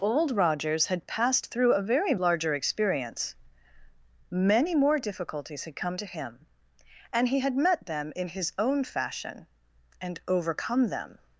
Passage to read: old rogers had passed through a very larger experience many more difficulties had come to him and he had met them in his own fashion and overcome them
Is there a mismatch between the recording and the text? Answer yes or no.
no